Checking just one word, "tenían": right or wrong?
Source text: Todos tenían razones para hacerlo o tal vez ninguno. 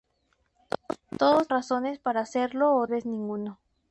wrong